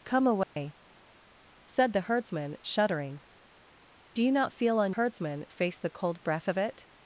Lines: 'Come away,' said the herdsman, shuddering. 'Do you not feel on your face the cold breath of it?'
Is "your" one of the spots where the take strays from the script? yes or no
yes